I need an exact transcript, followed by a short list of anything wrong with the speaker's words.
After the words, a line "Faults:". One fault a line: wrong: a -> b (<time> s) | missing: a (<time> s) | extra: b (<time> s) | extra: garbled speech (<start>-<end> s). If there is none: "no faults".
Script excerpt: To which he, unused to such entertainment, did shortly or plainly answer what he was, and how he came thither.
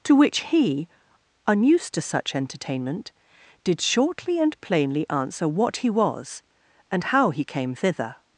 To which he, unused to such entertainment, did shortly and plainly answer what he was, and how he came thither.
Faults:
wrong: or -> and (4.4 s)